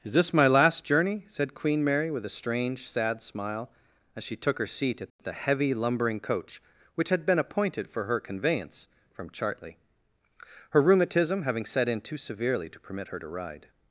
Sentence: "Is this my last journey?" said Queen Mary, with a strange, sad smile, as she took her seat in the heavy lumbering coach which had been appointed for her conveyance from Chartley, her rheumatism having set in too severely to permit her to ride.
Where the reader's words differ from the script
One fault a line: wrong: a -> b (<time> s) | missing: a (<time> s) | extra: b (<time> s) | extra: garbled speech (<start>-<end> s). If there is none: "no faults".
wrong: in -> at (5.0 s)